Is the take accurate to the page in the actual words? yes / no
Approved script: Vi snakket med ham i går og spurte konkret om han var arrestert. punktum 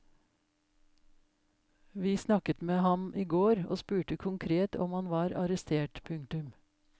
yes